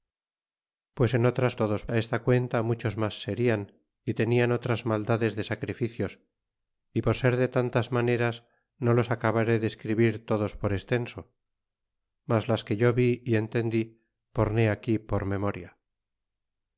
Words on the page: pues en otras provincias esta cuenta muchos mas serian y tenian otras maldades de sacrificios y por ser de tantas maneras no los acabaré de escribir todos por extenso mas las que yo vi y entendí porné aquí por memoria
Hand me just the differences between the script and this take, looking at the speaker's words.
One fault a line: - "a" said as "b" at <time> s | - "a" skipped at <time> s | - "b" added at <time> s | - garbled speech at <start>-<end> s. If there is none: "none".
- "provincias" said as "todos" at 1.6 s